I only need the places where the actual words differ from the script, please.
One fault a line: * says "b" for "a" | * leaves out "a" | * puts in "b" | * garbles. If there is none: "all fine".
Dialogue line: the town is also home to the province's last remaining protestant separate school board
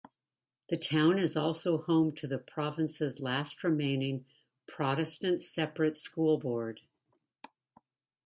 all fine